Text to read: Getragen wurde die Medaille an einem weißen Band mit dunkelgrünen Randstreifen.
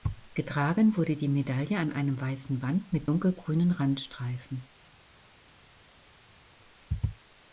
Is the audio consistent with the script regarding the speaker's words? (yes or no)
yes